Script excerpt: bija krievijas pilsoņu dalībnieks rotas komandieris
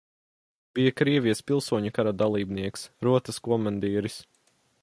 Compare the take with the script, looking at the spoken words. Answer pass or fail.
fail